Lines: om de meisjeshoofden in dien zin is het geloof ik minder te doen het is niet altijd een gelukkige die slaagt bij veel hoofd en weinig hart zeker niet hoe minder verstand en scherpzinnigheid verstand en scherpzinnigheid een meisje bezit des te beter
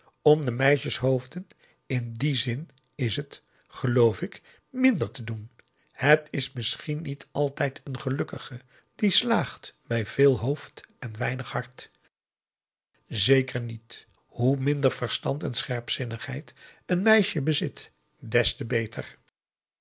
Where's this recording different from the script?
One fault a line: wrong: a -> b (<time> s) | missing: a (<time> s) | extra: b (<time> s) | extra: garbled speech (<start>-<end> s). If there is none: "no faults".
extra: misschien (6.5 s)
missing: verstand en scherpzinnigheid (16.5 s)